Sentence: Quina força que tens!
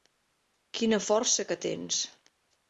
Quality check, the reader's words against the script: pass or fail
pass